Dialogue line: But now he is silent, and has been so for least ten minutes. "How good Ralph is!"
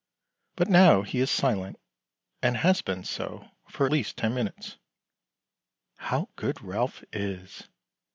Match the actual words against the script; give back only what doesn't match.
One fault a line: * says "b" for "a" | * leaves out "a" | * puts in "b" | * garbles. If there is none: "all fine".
all fine